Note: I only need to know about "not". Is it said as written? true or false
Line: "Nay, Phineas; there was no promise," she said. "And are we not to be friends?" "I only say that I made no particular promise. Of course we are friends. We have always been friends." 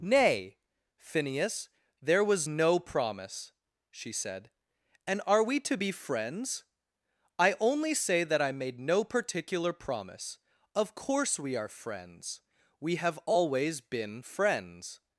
false